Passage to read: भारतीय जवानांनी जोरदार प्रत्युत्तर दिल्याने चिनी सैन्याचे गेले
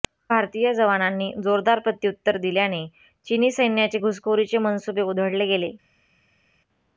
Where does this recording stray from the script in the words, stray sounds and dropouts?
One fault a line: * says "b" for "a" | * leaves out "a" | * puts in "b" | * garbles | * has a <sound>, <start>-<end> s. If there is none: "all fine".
* puts in "घुसखोरीचे मनसुबे उधळले"